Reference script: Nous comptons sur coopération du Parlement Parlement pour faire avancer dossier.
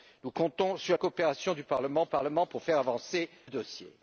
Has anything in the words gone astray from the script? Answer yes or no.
no